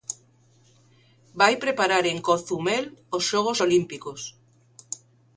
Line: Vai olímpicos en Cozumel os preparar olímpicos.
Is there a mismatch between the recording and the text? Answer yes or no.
yes